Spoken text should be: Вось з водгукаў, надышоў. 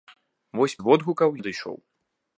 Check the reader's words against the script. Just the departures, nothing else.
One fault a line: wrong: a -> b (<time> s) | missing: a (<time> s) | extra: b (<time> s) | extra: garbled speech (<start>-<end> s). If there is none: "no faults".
no faults